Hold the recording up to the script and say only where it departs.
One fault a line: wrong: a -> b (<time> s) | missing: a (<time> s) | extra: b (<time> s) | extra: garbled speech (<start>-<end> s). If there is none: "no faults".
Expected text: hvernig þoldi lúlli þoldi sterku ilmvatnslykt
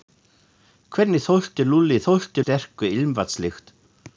no faults